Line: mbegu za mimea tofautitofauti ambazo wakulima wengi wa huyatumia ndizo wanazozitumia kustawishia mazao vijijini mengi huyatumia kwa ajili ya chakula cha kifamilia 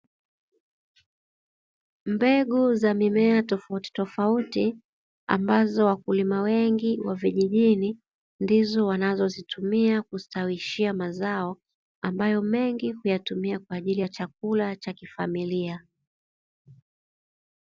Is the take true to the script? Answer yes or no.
no